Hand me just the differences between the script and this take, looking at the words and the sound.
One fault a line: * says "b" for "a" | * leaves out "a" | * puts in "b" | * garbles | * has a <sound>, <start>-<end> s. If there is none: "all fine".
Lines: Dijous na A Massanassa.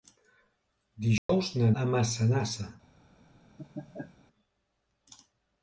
* has a dropout, 1.2-1.3 s
* has a laugh, 3.6-4.2 s